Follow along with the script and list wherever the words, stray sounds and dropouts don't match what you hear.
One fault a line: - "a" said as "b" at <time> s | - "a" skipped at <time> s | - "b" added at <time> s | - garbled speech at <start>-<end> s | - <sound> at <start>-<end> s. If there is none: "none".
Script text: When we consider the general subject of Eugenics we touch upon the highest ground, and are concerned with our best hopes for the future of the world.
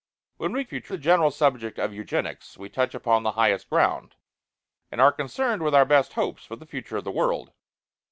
- "consider" said as "future" at 0.6 s